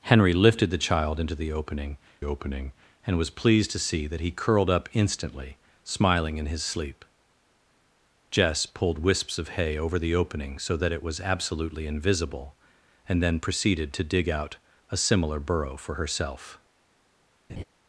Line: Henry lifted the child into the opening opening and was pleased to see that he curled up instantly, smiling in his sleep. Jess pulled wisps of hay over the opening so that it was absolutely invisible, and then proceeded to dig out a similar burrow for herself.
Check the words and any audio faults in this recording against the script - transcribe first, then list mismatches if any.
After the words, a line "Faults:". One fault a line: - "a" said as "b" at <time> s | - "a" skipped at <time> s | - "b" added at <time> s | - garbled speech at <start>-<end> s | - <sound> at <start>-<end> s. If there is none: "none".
Henry lifted the child into the opening opening and was pleased to see that he curled up instantly, smiling in his sleep. Jess pulled wisps of hay over the opening so that it was absolutely invisible, and then proceeded to dig out a similar burrow for herself.
Faults:
- laugh at 17.5-17.6 s